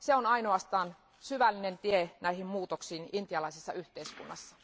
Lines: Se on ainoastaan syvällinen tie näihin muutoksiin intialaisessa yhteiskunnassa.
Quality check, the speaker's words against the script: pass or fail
pass